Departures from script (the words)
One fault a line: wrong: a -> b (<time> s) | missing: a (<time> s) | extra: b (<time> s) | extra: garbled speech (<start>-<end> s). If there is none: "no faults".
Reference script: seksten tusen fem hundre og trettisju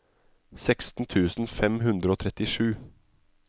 no faults